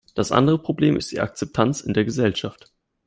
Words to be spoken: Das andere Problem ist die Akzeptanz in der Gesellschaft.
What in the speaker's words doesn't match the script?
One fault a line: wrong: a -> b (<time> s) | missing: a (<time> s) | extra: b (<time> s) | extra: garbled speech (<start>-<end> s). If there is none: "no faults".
no faults